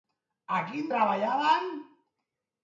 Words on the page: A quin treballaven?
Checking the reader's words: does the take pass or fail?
pass